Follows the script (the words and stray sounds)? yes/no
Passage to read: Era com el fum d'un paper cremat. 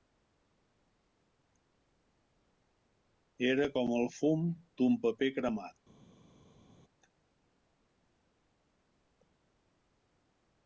yes